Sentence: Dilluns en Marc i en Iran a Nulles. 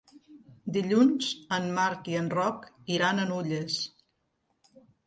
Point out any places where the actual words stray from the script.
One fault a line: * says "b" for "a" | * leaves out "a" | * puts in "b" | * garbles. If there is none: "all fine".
* puts in "Roc"